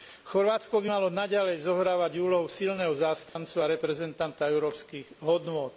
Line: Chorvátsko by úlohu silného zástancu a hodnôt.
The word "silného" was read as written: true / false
true